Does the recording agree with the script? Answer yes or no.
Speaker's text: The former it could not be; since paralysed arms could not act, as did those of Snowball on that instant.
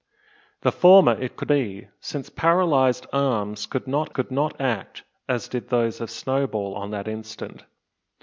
no